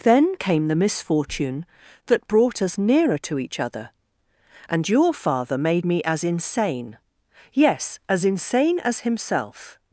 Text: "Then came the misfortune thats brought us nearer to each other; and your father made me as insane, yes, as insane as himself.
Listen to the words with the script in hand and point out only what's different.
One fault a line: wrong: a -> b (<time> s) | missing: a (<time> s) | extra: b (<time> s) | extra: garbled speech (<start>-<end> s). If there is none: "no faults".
wrong: thats -> that (2.0 s)